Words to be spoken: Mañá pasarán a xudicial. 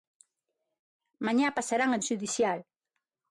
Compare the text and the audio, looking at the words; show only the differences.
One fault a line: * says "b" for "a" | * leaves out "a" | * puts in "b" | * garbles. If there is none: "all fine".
all fine